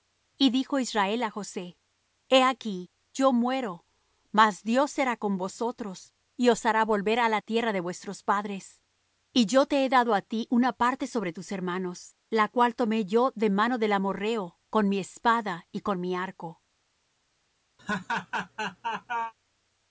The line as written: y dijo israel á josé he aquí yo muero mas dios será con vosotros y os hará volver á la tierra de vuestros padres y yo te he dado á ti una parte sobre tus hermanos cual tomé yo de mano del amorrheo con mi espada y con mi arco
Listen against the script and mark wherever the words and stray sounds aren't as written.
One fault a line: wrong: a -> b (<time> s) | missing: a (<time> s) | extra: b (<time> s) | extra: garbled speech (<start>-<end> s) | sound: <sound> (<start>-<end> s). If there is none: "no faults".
extra: la (12.3 s)
sound: laugh (17.8-19.3 s)